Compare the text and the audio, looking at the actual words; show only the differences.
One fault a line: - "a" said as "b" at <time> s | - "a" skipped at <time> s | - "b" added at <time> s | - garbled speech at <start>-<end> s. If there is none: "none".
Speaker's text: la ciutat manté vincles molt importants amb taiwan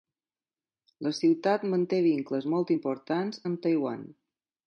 none